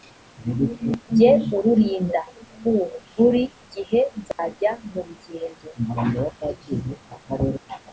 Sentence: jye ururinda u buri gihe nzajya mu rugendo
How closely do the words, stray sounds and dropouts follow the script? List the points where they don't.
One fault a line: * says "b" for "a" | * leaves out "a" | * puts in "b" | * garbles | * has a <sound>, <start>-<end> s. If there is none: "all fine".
* has a dropout, 4.3-4.4 s